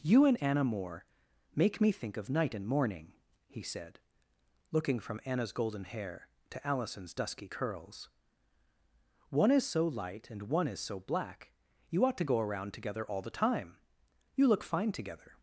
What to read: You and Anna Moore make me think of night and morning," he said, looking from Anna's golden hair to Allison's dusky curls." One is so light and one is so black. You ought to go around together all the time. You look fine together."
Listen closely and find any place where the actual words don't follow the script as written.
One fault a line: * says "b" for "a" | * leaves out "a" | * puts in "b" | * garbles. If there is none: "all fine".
all fine